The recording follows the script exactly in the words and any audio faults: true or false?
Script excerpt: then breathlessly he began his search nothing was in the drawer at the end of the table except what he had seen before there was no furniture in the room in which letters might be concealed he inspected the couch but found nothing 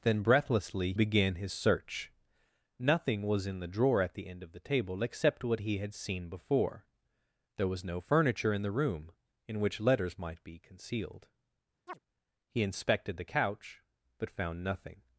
false